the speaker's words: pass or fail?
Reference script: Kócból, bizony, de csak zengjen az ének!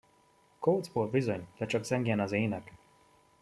pass